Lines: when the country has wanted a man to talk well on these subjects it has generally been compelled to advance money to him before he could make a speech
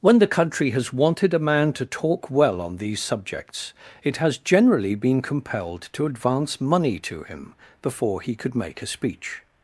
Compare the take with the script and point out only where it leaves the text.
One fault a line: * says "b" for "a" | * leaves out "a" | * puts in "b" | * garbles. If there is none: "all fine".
all fine